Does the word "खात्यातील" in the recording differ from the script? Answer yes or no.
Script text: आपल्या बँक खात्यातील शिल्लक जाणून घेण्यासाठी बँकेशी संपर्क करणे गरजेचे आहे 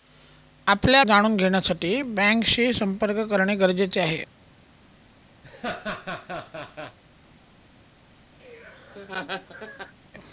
yes